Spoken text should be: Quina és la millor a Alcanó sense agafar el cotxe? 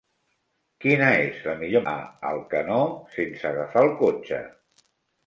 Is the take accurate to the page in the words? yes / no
yes